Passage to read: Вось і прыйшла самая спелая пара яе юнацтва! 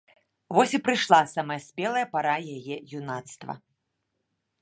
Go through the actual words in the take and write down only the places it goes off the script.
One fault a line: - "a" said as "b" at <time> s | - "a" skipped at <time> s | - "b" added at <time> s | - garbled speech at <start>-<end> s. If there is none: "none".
none